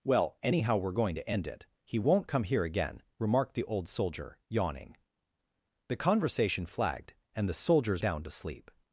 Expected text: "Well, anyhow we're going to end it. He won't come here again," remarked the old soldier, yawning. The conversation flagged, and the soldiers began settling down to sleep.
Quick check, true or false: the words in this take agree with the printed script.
false